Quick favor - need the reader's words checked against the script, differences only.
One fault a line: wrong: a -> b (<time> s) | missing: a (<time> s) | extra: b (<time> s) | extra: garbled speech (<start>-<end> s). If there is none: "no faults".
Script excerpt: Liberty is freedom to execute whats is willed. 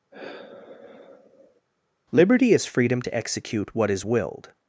wrong: whats -> what (3.7 s)